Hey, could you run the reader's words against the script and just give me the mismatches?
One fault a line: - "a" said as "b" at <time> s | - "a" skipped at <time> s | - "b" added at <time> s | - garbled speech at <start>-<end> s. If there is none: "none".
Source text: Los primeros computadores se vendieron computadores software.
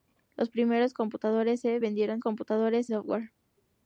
none